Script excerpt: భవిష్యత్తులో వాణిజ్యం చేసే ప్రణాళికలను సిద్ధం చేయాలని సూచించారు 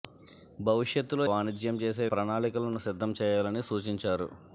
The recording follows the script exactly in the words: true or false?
true